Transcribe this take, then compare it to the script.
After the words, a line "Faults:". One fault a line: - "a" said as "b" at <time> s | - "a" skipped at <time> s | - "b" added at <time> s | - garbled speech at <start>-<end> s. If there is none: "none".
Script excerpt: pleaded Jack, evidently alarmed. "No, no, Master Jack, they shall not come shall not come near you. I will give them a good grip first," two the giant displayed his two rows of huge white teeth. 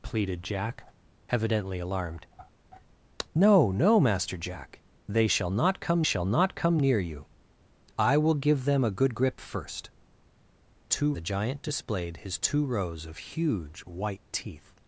pleaded Jack, evidently alarmed. "No, no, Master Jack, they shall not come shall not come near you. I will give them a good grip first," two the giant displayed his two rows of huge white teeth.
Faults:
none